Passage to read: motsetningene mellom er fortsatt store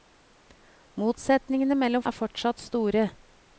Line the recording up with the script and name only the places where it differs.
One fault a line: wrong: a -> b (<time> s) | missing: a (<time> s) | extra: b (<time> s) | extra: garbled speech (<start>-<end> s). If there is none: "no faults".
no faults